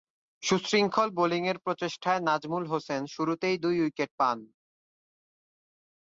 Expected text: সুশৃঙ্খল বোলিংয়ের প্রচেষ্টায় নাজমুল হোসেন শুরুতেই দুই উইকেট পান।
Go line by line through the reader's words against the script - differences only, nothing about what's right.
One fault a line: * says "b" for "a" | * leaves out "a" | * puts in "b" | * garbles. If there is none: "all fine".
all fine